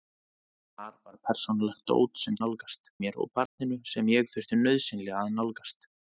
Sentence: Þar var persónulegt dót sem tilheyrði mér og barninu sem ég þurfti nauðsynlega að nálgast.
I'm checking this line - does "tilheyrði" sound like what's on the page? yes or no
no